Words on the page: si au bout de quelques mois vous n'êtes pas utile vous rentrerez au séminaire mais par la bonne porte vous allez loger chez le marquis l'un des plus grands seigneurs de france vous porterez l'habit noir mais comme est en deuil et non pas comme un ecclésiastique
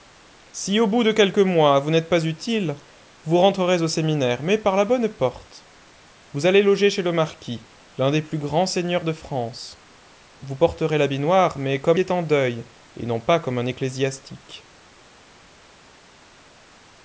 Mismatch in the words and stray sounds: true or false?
false